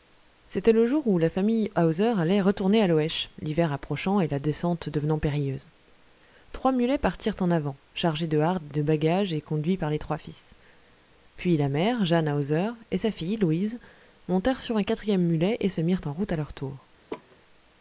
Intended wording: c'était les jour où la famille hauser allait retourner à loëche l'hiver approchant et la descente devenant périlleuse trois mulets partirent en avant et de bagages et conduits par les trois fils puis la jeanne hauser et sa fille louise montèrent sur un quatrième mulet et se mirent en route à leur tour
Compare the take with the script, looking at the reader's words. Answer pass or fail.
fail